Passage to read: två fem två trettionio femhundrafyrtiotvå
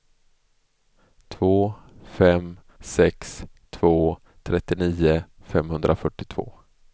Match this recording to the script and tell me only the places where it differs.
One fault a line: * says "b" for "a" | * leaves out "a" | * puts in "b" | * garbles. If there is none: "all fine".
* puts in "sex"